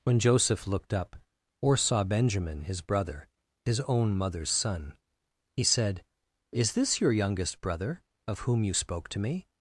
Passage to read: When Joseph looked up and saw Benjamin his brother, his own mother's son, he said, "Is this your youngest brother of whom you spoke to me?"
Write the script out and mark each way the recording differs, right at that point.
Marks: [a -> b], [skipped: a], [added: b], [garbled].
When Joseph looked up [and -> or] saw Benjamin his brother, his own mother's son, he said, "Is this your youngest brother of whom you spoke to me?"